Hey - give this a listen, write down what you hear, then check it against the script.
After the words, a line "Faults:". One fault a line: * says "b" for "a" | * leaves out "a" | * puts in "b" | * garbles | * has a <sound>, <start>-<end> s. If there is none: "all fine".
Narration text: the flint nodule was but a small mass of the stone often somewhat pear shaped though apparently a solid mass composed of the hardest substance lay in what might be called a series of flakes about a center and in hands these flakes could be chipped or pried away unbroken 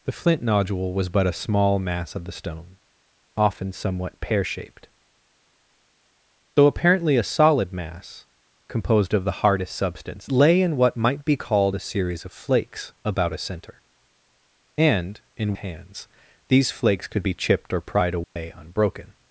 the flint nodule was but a small mass of the stone often somewhat pear shaped though apparently a solid mass composed of the hardest substance lay in what might be called a series of flakes about a center and in hands these flakes could be chipped or pried away unbroken
Faults:
* has a dropout, 18.2-18.4 s